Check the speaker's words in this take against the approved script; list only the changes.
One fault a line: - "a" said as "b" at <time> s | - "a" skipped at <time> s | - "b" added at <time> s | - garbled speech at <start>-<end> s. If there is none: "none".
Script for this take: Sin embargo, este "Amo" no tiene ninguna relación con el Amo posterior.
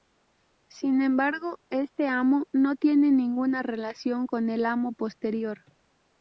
none